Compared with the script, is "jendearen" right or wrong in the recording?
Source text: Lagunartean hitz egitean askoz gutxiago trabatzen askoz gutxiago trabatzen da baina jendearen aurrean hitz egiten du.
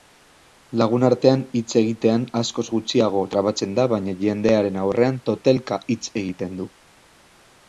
right